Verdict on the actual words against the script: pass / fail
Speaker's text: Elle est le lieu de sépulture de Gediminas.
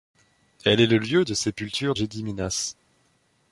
fail